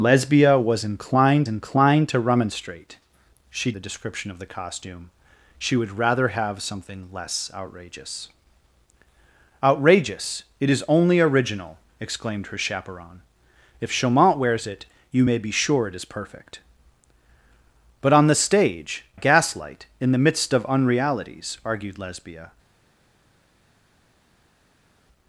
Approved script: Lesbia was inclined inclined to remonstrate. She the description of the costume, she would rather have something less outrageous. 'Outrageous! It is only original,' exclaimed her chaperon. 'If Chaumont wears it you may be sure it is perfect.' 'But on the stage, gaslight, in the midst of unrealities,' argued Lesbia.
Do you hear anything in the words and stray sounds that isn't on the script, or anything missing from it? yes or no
no